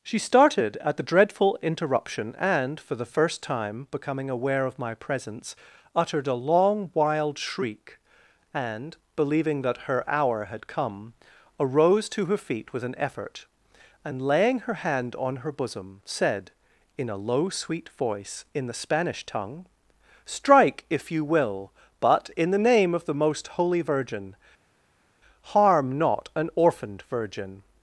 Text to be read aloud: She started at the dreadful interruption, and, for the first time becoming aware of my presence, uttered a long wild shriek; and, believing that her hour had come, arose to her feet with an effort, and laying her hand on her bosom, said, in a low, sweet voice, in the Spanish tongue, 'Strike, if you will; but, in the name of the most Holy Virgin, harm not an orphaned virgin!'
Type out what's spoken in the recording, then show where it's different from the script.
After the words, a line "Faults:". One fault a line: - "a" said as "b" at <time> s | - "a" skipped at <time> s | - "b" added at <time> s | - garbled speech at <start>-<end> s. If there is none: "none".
She started at the dreadful interruption, and, for the first time becoming aware of my presence, uttered a long wild shriek; and, believing that her hour had come, arose to her feet with an effort, and laying her hand on her bosom, said, in a low, sweet voice, in the Spanish tongue, 'Strike, if you will; but, in the name of the most Holy Virgin, harm not an orphaned virgin!'
Faults:
none